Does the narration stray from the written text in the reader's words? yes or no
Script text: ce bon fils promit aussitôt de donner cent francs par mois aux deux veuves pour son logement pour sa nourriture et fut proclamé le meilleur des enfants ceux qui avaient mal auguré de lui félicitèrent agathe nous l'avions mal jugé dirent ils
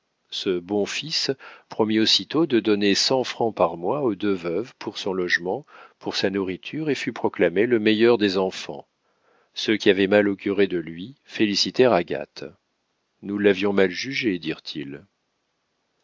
no